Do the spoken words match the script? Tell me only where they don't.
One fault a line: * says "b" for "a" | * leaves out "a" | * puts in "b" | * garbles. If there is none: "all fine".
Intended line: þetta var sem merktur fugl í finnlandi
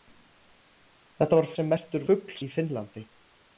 all fine